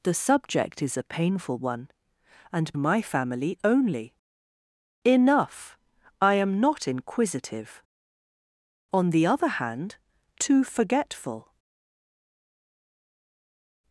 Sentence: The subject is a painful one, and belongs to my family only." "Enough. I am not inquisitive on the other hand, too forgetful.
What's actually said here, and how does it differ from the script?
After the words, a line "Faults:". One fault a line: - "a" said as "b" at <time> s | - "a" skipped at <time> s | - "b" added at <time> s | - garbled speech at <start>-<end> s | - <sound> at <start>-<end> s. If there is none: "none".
The subject is a painful one, and my family only." "Enough. I am not inquisitive on the other hand, too forgetful.
Faults:
- "belongs to" skipped at 2.7 s